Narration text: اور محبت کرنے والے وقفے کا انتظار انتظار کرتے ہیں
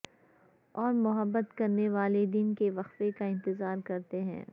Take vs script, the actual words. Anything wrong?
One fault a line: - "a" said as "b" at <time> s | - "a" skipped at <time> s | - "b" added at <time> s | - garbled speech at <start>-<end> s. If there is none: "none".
- "دن کے" added at 2.2 s
- "انتظار" skipped at 3.8 s